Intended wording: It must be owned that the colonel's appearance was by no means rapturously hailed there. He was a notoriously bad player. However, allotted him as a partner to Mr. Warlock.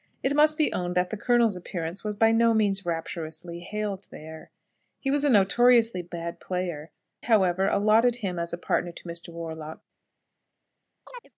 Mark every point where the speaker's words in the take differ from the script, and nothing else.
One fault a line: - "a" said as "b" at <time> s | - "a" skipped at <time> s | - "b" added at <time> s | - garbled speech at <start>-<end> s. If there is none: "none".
none